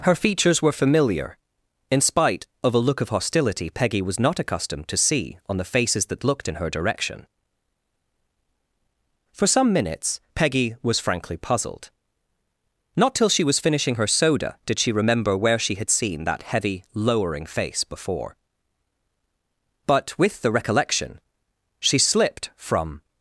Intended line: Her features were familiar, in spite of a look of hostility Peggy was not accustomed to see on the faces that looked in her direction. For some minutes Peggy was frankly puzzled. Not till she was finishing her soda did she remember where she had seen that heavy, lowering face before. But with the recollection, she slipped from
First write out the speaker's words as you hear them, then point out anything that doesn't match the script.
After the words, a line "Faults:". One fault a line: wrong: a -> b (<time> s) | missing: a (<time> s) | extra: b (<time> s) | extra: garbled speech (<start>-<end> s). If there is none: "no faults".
Her features were familiar, in spite of a look of hostility Peggy was not accustomed to see on the faces that looked in her direction. For some minutes Peggy was frankly puzzled. Not till she was finishing her soda did she remember where she had seen that heavy, lowering face before. But with the recollection, she slipped from
Faults:
no faults